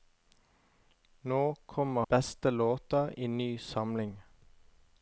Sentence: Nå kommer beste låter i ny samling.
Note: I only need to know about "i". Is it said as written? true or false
true